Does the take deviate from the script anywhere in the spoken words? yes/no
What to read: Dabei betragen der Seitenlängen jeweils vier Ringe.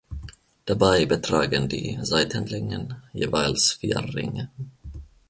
yes